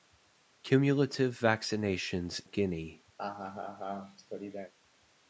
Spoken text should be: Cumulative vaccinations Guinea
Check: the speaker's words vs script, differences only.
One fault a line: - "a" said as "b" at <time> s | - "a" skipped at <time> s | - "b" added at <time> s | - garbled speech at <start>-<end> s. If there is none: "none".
none